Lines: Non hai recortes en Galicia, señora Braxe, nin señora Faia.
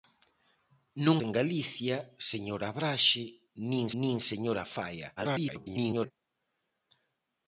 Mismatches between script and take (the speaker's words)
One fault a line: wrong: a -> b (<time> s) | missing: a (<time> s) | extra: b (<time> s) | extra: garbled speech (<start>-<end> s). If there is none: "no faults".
missing: hai recortes (1.2 s)
extra: nin (4.0 s)
extra: garbled speech (5.2-6.1 s)